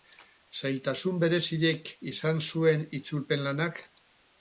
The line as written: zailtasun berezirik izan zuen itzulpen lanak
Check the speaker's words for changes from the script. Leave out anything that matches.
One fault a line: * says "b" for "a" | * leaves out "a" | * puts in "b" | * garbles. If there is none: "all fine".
all fine